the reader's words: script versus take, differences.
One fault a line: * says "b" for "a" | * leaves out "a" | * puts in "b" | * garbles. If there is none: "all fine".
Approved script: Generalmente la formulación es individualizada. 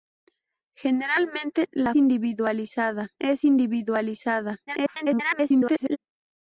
* says "individualizada" for "formulación"
* garbles